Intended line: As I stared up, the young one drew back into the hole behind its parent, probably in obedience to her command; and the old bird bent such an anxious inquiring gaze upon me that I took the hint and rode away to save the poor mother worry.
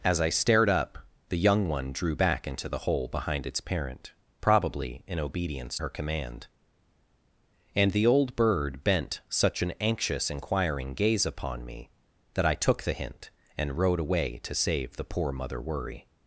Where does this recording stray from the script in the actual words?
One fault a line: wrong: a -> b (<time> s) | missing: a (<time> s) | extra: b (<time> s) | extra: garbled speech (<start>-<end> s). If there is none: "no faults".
missing: to (5.8 s)